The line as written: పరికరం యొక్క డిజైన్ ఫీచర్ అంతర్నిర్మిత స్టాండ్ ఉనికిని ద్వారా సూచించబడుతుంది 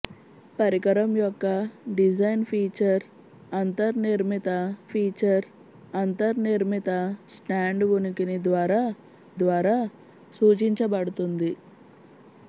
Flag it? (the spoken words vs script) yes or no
yes